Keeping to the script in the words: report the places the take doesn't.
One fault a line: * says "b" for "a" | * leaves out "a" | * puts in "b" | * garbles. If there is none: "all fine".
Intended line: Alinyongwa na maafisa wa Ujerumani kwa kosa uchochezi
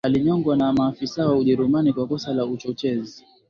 * puts in "la"